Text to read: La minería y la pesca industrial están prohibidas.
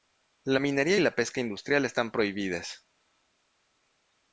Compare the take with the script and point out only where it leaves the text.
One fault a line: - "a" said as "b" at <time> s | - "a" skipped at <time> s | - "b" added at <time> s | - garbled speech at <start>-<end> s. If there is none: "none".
none